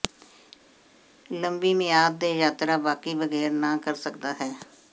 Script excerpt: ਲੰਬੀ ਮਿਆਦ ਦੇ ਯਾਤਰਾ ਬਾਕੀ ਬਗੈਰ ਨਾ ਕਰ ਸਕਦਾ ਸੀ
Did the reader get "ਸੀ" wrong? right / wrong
wrong